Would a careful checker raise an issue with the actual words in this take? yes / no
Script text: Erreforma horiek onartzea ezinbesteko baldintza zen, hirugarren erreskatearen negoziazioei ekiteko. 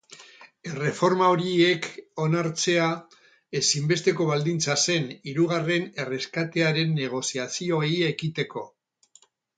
no